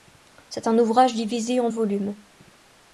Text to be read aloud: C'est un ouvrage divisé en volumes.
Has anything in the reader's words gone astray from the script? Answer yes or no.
no